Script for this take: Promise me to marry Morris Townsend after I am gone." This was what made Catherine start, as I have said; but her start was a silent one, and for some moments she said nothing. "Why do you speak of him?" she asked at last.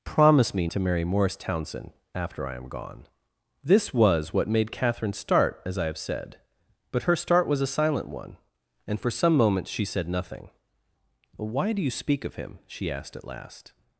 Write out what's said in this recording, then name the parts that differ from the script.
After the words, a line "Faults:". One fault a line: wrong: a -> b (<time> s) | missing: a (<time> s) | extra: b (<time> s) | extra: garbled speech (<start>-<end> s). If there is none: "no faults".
Promise me to marry Morris Townsend after I am gone." This was what made Catherine start, as I have said; but her start was a silent one, and for some moments she said nothing. "Why do you speak of him?" she asked at last.
Faults:
no faults